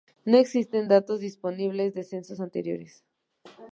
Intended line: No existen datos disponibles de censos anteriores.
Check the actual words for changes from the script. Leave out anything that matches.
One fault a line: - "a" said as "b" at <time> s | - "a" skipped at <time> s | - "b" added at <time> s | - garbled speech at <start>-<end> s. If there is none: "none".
none